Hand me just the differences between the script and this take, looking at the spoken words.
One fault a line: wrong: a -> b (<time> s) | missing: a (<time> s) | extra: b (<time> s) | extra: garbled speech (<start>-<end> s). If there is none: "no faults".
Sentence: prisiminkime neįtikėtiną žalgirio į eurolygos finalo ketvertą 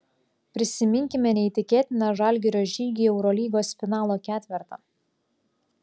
extra: žygį (2.7 s)